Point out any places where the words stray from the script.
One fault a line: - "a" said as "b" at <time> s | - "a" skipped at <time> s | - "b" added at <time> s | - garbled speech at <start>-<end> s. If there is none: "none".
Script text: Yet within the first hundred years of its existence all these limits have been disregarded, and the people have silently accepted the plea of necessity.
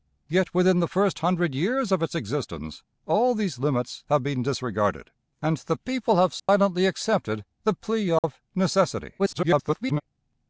- garbled speech at 9.2-10.0 s